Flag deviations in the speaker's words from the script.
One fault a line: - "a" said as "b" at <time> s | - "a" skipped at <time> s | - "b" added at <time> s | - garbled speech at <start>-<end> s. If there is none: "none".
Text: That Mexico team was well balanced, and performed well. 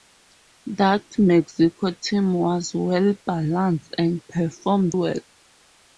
none